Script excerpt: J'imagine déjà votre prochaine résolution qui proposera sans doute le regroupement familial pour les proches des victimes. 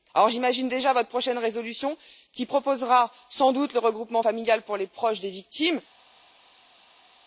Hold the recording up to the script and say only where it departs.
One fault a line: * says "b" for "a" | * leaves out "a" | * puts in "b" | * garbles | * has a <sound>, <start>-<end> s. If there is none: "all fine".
all fine